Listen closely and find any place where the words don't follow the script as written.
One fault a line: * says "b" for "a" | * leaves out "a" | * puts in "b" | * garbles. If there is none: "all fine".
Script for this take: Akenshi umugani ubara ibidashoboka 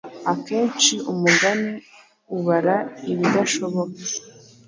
all fine